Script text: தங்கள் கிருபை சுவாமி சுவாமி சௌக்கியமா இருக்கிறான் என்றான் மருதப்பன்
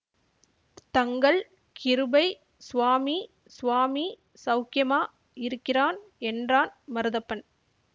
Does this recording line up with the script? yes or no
yes